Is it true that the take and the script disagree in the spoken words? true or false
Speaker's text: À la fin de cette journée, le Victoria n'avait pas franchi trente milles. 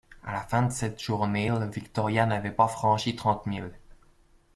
false